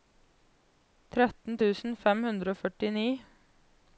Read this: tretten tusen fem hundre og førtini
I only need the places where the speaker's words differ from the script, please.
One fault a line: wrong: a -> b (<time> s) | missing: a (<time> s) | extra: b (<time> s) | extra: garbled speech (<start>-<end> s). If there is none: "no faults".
no faults